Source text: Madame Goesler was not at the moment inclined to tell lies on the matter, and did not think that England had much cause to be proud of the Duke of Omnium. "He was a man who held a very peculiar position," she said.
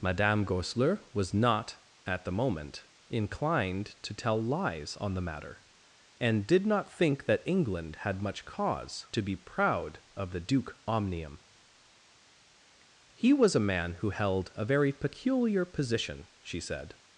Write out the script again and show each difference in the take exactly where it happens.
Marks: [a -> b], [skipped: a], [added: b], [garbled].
Madame Goesler was not at the moment inclined to tell lies on the matter, and did not think that England had much cause to be proud of the Duke [skipped: of] Omnium. "He was a man who held a very peculiar position," she said.